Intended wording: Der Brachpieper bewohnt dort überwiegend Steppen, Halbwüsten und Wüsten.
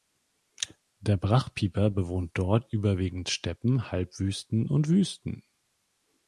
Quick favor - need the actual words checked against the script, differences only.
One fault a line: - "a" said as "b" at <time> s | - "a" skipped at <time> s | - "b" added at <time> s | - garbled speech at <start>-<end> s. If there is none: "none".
none